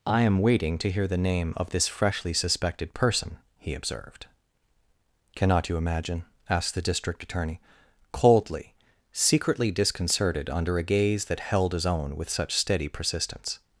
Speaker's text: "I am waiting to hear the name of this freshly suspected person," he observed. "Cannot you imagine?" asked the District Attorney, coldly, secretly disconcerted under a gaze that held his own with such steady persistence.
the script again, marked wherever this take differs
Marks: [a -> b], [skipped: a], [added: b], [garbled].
"I am waiting to hear the name of this freshly suspected person," he observed. "Cannot you imagine?" asked the District Attorney, coldly, secretly disconcerted under a gaze that held his own with such steady persistence.